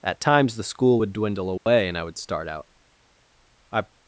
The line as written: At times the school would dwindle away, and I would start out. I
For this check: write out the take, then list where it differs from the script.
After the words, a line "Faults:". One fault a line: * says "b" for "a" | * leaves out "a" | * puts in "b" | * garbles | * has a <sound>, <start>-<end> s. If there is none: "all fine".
At times the school would dwindle away, and I would start out. I
Faults:
* has a dropout, 1.6-1.7 s